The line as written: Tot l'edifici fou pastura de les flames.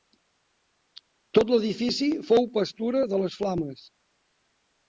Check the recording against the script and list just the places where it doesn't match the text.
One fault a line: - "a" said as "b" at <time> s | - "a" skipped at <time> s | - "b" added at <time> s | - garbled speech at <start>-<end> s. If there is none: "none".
none